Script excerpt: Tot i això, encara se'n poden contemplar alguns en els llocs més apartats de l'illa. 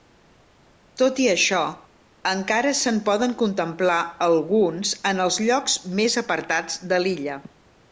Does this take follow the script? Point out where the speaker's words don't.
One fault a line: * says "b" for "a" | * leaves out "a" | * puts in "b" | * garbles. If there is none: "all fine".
all fine